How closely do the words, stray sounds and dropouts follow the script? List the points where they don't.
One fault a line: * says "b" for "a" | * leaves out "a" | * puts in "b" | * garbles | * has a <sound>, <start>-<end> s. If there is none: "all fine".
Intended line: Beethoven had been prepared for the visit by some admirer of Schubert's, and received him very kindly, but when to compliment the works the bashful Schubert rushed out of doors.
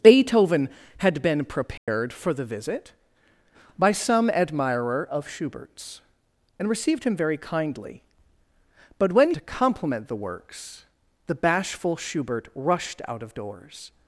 * has a dropout, 1.8-1.9 s